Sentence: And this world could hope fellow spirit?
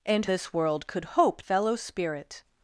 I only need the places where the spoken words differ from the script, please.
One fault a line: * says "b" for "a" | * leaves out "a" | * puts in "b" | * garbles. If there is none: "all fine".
all fine